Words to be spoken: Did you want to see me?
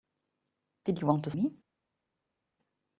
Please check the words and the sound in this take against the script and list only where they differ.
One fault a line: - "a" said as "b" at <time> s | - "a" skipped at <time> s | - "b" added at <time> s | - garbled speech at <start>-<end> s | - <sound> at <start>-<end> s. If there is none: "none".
- "see" skipped at 1.3 s